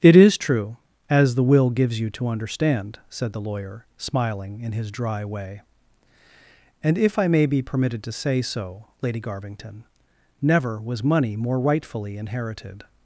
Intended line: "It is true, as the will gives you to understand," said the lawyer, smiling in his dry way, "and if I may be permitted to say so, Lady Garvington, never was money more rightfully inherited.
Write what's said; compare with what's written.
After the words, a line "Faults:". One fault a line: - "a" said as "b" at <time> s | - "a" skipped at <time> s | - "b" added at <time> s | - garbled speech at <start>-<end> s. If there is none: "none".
"It is true, as the will gives you to understand," said the lawyer, smiling in his dry way, "and if I may be permitted to say so, Lady Garvington, never was money more rightfully inherited.
Faults:
none